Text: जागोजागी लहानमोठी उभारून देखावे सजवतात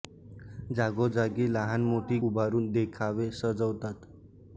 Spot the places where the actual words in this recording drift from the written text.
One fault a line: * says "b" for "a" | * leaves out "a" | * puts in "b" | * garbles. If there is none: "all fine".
all fine